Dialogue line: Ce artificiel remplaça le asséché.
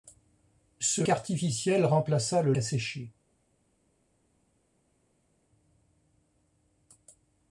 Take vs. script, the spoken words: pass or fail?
pass